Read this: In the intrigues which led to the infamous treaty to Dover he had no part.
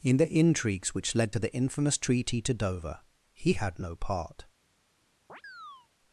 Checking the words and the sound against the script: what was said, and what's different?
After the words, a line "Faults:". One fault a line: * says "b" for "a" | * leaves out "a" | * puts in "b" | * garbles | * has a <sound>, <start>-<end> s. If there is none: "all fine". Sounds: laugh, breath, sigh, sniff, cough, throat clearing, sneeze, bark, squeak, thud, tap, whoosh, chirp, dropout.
In the intrigues which led to the infamous treaty to Dover he had no part.
Faults:
* has a chirp, 5.3-5.9 s